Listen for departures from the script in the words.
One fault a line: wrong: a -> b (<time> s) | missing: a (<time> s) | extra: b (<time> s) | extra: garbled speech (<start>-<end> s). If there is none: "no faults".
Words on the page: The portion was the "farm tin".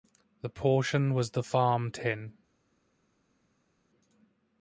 no faults